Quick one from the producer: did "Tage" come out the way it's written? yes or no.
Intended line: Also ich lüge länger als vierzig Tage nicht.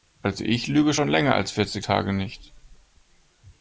yes